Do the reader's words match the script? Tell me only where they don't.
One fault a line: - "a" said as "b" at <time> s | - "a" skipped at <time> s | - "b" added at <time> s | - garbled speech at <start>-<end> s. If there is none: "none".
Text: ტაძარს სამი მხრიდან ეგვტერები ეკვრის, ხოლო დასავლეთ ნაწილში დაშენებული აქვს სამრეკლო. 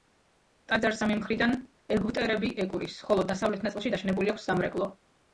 none